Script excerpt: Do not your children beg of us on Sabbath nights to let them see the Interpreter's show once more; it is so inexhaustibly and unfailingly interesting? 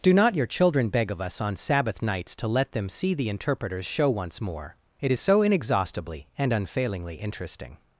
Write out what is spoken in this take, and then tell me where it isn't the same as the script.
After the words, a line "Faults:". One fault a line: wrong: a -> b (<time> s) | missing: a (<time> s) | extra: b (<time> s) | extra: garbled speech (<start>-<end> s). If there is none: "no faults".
Do not your children beg of us on Sabbath nights to let them see the Interpreter's show once more; it is so inexhaustibly and unfailingly interesting?
Faults:
no faults